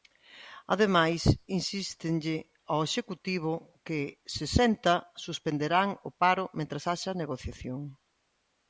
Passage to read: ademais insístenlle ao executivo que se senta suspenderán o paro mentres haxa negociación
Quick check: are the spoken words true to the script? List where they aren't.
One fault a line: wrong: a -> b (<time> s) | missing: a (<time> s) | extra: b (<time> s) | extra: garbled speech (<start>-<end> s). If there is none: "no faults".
no faults